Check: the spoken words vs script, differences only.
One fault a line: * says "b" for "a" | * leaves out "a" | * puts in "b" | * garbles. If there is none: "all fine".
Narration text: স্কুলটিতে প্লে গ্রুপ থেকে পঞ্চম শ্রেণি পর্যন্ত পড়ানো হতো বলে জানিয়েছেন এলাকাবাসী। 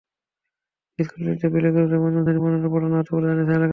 all fine